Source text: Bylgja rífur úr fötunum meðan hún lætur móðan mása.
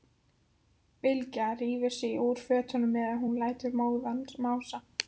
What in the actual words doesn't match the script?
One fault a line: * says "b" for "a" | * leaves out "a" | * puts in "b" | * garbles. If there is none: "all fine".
* puts in "sig"